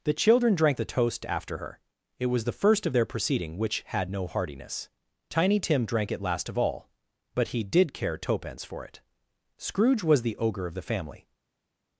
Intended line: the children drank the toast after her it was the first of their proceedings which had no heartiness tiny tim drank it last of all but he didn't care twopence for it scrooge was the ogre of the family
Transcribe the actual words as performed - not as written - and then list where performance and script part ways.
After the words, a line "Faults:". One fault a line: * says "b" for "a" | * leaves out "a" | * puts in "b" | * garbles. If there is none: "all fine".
the children drank the toast after her it was the first of their proceeding which had no heartiness tiny tim drank it last of all but he did care twopence for it scrooge was the ogre of the family
Faults:
* says "proceeding" for "proceedings"
* says "did" for "didn't"